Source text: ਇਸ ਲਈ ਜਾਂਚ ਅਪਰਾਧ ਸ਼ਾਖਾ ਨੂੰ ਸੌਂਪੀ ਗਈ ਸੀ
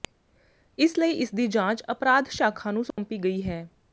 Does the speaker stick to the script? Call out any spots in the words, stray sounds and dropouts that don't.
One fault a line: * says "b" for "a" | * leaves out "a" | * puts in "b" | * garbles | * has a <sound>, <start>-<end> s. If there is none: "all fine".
* puts in "ਇਸਦੀ"
* has a dropout, 2.9-3.0 s
* says "ਹੈ" for "ਸੀ"